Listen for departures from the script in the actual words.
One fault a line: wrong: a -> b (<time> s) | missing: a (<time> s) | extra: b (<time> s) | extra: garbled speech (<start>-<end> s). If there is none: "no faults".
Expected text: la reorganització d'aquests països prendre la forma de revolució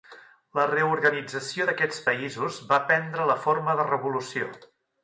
extra: va (2.7 s)